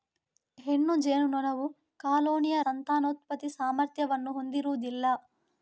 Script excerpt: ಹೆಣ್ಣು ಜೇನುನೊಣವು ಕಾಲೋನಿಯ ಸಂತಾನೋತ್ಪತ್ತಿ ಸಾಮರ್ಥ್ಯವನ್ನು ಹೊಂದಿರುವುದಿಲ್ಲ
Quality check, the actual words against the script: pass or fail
pass